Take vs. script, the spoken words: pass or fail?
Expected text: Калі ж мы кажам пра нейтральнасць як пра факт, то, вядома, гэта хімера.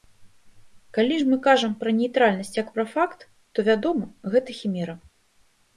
pass